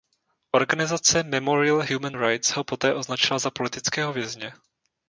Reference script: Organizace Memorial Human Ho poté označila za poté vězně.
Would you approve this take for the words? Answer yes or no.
no